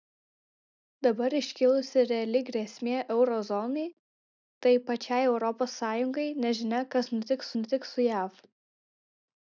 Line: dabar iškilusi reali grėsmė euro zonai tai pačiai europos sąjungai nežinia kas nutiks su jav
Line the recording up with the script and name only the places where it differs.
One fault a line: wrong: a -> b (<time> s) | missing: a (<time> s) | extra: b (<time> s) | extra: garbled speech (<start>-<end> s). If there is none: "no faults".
extra: nutiks (7.6 s)